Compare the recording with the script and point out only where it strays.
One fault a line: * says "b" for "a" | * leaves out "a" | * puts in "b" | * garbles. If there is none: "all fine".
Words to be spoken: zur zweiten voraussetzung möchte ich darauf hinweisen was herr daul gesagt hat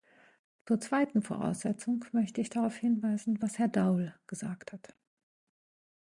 all fine